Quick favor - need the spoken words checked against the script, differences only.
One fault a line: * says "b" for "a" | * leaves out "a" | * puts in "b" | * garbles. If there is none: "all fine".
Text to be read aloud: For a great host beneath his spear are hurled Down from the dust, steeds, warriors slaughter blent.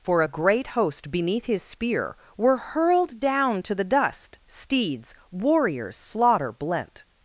* says "were" for "are"
* says "to" for "from"